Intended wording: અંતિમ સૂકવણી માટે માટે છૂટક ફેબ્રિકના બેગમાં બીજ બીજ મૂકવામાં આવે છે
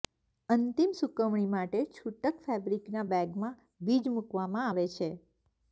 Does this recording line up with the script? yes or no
no